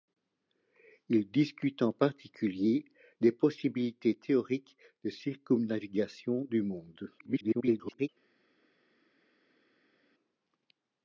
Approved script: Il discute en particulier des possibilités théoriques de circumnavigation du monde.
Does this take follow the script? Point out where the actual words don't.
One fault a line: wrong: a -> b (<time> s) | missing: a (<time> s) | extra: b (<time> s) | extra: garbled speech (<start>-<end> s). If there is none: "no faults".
extra: garbled speech (7.2-8.1 s)